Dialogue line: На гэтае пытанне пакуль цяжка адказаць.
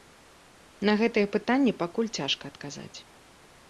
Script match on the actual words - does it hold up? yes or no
yes